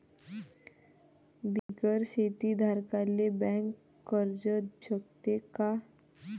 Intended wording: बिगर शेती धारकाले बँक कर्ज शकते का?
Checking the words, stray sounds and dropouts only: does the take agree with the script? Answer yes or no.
no